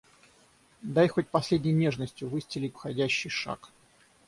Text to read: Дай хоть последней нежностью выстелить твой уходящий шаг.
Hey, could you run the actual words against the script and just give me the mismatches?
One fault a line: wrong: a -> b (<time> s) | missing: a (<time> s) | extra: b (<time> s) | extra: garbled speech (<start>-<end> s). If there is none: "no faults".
missing: твой (2.8 s)